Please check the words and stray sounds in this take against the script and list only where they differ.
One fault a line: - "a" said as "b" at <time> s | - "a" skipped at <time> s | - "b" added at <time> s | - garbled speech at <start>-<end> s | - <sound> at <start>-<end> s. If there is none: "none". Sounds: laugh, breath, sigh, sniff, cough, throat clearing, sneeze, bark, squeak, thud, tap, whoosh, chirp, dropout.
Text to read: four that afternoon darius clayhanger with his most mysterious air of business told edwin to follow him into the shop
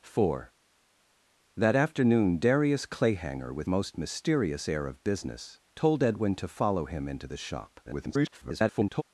- "his" skipped at 3.7 s
- garbled speech at 7.8-9.0 s